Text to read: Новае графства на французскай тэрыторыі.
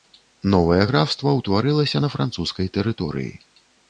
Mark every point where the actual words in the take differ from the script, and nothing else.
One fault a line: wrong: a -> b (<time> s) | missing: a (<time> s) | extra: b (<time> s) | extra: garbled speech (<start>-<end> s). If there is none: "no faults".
extra: ўтварылася (1.4 s)